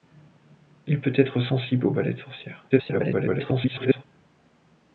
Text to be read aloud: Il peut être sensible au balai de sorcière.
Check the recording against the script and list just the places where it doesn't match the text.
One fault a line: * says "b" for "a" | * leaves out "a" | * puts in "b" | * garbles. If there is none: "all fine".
* garbles